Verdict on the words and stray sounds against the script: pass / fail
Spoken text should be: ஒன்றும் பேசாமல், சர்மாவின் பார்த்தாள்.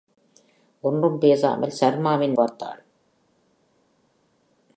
pass